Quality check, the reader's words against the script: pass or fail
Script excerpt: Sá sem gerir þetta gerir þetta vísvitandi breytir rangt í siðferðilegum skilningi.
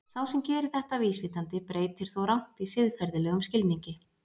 fail